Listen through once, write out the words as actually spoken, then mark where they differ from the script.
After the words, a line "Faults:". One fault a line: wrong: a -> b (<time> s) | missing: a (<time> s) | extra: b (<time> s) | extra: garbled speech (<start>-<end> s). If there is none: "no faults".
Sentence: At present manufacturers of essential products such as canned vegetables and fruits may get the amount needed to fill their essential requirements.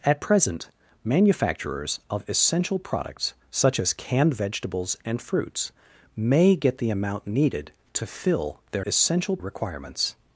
At present manufacturers of essential products such as canned vegetables and fruits may get the amount needed to fill their essential requirements.
Faults:
no faults